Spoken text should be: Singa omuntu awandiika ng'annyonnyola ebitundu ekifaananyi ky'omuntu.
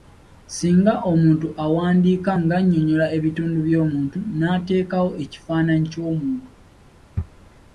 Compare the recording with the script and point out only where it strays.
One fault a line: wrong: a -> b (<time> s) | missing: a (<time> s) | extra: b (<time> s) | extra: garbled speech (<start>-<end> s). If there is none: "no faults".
extra: by'omuntu n'ateekawo (3.7 s)